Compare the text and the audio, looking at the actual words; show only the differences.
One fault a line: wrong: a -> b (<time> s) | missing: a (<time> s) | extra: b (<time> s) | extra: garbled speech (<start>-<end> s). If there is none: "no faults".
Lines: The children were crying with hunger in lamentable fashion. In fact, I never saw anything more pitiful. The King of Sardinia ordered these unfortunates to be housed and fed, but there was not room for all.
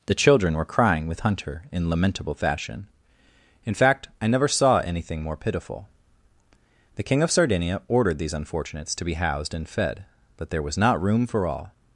wrong: hunger -> hunter (1.2 s)